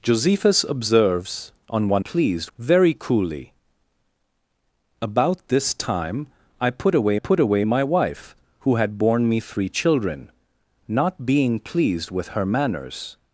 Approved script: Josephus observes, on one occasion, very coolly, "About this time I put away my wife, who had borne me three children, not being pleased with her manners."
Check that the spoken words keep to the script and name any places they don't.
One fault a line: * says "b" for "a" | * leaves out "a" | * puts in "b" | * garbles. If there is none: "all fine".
* says "pleased" for "occasion"
* puts in "put away"